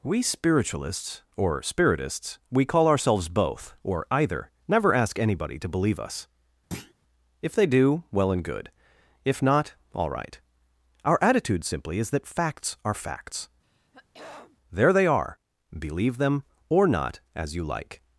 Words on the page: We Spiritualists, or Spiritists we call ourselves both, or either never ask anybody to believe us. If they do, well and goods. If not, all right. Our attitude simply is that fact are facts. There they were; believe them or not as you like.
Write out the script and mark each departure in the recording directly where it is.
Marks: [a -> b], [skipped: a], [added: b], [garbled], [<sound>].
We Spiritualists, or Spiritists we call ourselves both, or either never ask anybody to believe us. [thud] If they do, well and [goods. -> good] If not, all right. Our attitude simply is that [fact -> facts] are facts. [throat clearing] There they [were; -> are] believe them or not as you like.